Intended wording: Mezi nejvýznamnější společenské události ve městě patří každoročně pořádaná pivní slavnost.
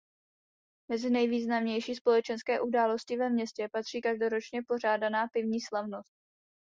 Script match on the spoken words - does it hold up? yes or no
yes